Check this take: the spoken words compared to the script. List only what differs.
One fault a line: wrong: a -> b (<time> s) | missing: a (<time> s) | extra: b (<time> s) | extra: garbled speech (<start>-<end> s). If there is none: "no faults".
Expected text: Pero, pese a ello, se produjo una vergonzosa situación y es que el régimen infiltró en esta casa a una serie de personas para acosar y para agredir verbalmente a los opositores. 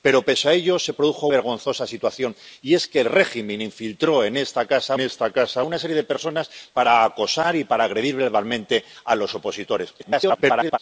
missing: una (1.3 s)
extra: esta casa (5.0 s)
extra: garbled speech (10.0-10.8 s)